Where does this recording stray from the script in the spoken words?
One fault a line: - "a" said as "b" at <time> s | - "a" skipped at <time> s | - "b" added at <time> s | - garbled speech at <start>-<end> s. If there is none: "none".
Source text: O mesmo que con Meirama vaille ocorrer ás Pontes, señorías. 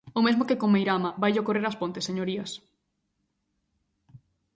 none